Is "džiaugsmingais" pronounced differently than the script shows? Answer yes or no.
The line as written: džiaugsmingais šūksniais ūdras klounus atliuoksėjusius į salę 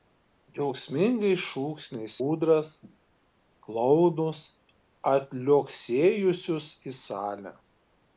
no